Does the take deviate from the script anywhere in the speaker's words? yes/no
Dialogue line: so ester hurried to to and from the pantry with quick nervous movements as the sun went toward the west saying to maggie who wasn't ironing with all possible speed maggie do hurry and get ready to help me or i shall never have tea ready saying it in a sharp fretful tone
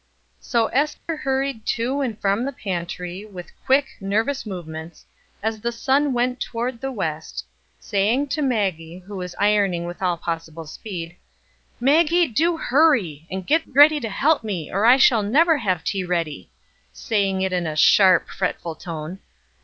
yes